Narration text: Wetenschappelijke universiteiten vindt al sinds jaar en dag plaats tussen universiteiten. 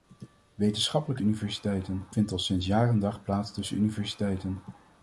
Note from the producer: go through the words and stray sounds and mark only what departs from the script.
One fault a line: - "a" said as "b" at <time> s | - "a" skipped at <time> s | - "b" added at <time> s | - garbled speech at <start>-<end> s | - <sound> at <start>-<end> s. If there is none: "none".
none